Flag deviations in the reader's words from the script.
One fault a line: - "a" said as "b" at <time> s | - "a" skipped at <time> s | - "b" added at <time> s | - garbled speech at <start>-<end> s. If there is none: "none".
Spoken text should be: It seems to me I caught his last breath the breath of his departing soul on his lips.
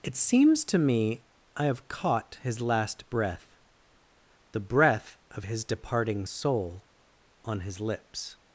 - "have" added at 1.6 s